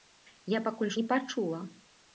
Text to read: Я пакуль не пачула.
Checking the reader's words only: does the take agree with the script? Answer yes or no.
yes